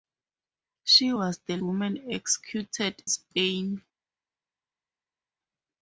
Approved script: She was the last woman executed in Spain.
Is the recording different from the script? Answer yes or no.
yes